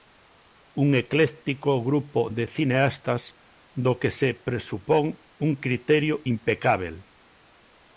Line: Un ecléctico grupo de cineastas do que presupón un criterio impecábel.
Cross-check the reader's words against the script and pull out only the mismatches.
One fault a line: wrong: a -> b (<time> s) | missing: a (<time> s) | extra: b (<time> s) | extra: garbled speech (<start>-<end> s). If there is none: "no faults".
extra: se (4.2 s)